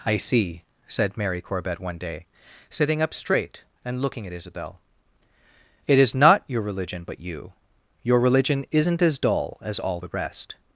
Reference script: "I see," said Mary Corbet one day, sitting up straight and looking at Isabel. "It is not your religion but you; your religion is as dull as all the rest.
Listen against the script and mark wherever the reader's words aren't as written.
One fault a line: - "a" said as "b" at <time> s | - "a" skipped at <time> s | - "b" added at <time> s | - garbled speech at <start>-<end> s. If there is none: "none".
- "is" said as "isn't" at 8.7 s